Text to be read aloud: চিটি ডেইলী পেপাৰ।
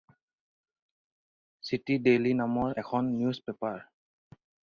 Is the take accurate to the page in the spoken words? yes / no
no